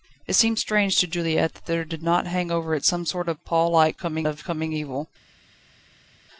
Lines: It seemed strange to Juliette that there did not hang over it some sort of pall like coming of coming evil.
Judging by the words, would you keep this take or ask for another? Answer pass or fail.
pass